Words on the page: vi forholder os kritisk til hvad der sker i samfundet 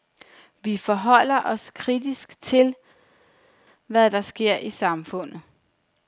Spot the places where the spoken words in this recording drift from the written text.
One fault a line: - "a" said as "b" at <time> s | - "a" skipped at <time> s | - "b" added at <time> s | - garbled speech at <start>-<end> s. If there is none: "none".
none